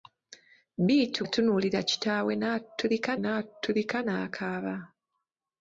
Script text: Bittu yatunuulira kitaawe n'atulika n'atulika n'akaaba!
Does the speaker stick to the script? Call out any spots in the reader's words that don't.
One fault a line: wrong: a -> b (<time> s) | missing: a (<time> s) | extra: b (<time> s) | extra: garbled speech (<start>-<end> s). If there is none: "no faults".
no faults